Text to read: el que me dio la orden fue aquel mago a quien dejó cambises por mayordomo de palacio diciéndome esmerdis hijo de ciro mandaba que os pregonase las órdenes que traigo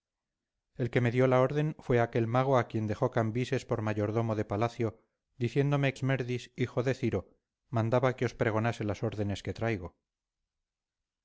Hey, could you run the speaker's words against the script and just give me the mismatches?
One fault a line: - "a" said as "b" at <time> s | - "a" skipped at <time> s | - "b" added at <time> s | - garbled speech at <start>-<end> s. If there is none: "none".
none